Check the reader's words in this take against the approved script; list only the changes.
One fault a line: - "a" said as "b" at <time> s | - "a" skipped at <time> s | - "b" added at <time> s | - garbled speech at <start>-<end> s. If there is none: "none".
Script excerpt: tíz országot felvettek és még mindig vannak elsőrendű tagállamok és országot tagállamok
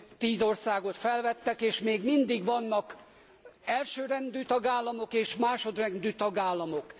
- "országot" said as "másodrendű" at 5.4 s